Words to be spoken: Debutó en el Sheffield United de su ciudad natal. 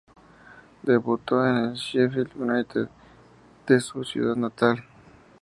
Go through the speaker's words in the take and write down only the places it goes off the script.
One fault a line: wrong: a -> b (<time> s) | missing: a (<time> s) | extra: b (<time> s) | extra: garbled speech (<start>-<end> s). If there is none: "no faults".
no faults